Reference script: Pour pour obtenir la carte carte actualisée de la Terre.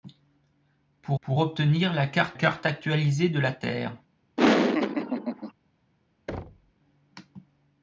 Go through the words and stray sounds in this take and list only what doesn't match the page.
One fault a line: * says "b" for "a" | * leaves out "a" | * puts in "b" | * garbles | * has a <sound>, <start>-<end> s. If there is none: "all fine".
* has a laugh, 4.4-5.5 s
* has a thud, 6.3-6.7 s